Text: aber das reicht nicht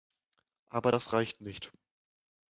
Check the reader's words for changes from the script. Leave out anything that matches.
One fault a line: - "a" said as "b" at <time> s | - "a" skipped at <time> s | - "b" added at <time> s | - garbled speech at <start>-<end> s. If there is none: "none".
none